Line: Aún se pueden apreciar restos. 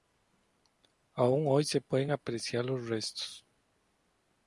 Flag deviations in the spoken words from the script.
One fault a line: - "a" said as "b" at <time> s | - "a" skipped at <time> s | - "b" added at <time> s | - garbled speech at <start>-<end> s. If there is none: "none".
- "hoy" added at 1.5 s
- "los" added at 2.6 s